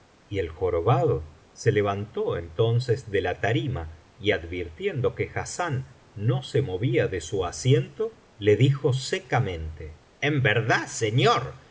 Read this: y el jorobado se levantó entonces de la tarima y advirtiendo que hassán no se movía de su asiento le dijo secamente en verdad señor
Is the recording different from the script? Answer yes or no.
no